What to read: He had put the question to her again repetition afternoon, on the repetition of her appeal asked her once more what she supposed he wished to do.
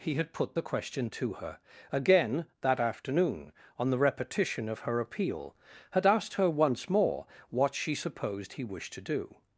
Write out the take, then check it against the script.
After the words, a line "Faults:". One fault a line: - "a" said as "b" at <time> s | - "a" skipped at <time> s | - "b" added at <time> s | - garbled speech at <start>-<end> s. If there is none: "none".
He had put the question to her again that afternoon, on the repetition of her appeal had asked her once more what she supposed he wished to do.
Faults:
- "repetition" said as "that" at 2.6 s
- "had" added at 5.9 s